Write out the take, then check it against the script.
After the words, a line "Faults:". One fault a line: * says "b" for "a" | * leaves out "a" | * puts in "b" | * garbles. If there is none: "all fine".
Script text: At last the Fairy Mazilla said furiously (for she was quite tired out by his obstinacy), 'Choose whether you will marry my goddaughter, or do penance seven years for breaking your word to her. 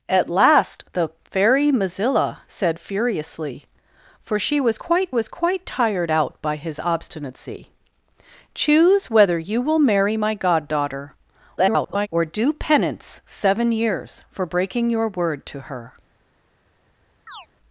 At last the Fairy Mazilla said furiously (for she was quite was quite tired out by his obstinacy), 'Choose whether you will marry my goddaughter, [garbled] or do penance seven years for breaking your word to her.
Faults:
* puts in "was quite"
* garbles